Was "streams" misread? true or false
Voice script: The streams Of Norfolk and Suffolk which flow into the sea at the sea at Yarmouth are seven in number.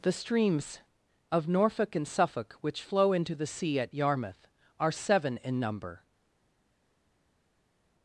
false